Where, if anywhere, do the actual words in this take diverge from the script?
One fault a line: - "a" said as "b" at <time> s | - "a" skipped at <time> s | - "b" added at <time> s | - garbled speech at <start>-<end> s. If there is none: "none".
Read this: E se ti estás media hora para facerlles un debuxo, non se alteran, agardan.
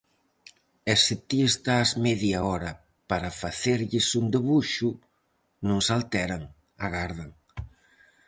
none